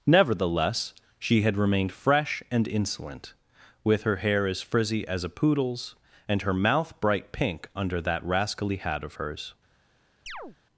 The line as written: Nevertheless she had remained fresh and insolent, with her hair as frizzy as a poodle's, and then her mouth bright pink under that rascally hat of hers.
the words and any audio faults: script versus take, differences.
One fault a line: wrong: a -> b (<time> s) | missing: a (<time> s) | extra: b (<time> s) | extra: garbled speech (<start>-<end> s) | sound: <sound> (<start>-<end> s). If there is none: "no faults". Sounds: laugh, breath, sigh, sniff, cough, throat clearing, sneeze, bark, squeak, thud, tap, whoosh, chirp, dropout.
missing: then (6.4 s)
sound: chirp (10.3-10.6 s)